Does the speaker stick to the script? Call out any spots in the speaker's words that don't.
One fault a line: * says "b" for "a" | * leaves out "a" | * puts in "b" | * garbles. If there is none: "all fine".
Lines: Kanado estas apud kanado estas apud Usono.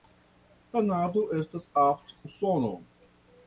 * leaves out "kanado estas apud"